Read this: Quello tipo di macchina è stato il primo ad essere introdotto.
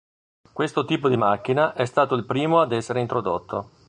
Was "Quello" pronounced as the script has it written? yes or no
no